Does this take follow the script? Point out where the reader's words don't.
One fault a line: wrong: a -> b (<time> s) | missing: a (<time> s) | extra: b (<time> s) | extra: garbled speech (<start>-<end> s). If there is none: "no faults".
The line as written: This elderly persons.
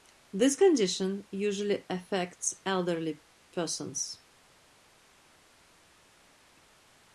extra: condition usually affects (0.5 s)